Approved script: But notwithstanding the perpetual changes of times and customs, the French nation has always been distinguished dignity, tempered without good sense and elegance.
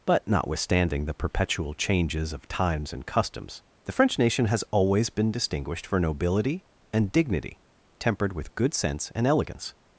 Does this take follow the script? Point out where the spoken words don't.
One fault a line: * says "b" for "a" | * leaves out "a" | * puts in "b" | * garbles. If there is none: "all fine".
* puts in "for nobility and"
* says "with" for "without"